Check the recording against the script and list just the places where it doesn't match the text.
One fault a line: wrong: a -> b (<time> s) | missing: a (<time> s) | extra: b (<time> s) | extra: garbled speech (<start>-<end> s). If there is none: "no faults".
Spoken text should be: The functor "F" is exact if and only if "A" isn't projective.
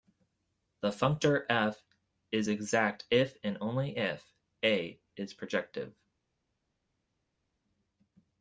wrong: isn't -> is (5.1 s)